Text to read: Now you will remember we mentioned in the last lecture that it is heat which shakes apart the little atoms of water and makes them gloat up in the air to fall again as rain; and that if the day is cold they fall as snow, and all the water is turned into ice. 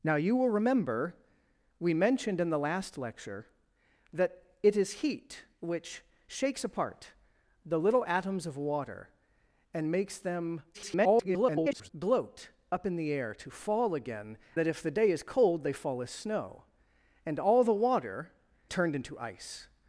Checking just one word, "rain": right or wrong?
wrong